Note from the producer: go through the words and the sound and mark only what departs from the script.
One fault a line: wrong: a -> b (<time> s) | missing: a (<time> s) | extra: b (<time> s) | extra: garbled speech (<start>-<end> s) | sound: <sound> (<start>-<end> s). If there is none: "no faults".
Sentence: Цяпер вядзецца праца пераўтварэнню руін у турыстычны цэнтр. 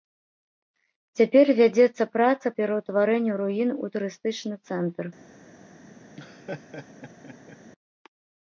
sound: laugh (6.2-7.6 s)